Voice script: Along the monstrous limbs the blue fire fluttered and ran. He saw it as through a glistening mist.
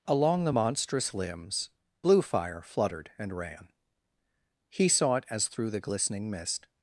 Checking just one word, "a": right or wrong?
wrong